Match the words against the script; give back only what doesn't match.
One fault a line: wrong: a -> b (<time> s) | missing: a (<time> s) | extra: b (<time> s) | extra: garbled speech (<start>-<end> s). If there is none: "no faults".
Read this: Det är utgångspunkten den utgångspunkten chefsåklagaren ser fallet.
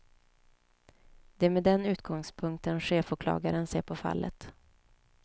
wrong: utgångspunkten -> med (1.5 s)
extra: på (3.8 s)